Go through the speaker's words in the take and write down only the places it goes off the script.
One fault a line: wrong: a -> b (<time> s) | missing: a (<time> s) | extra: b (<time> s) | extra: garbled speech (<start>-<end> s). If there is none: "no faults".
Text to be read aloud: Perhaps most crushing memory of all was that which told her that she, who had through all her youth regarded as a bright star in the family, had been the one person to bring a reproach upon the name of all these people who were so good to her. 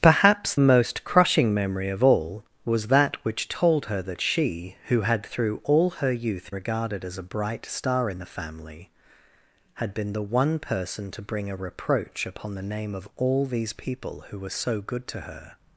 no faults